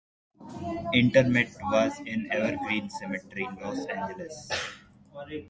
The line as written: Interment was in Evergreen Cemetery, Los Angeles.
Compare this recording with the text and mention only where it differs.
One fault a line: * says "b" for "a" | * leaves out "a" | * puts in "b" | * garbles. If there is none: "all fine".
all fine